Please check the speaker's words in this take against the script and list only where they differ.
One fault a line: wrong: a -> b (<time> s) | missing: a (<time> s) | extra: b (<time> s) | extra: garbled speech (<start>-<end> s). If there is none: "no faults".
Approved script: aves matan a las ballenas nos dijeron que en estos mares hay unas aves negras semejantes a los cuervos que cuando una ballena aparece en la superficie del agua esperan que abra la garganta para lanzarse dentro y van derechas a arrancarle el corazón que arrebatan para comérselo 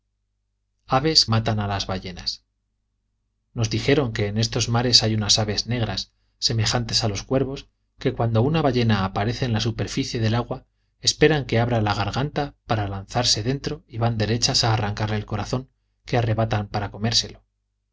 no faults